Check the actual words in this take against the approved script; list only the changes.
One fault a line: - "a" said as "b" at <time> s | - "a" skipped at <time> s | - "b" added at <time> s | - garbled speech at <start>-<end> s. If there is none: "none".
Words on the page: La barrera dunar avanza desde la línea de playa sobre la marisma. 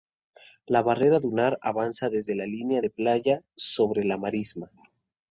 none